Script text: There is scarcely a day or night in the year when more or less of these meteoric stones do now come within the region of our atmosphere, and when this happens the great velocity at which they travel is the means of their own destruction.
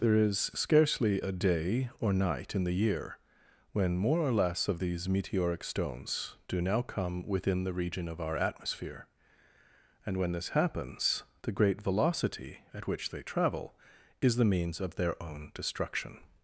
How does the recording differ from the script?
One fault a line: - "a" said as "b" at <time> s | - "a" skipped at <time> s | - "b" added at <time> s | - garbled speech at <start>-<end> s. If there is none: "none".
none